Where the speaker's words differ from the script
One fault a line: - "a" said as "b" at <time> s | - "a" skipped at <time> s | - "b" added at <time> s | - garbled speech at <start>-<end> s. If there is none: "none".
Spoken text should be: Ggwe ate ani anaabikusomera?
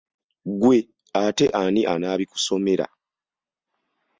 none